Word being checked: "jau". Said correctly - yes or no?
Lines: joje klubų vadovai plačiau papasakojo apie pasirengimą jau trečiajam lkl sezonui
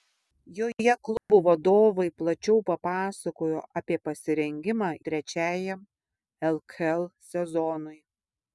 no